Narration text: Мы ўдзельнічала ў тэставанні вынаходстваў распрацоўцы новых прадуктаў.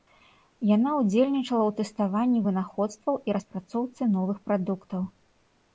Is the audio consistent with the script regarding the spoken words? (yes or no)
no